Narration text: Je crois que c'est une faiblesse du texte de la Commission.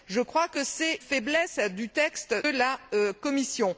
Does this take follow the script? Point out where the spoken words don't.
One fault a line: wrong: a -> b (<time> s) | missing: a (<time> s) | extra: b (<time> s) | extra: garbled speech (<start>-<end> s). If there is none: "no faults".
missing: une (1.0 s)
missing: de (2.4 s)